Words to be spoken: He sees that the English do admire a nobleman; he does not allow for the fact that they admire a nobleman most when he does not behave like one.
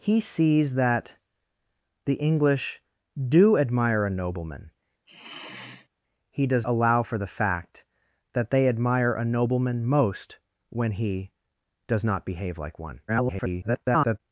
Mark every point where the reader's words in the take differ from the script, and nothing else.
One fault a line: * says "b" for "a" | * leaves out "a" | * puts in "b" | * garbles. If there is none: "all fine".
* leaves out "not"
* garbles